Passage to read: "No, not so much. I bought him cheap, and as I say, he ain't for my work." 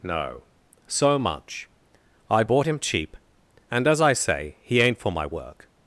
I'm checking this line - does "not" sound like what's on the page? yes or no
no